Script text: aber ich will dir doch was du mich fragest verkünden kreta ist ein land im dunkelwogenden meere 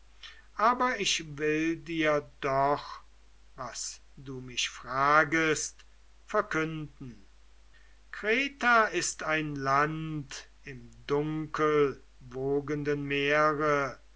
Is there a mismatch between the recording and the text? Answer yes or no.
no